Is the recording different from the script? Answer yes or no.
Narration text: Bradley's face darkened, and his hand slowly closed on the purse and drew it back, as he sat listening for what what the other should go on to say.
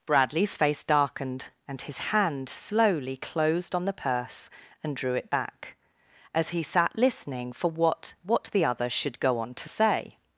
no